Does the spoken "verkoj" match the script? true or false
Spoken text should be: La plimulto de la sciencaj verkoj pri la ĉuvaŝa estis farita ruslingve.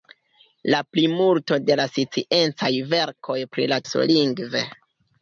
true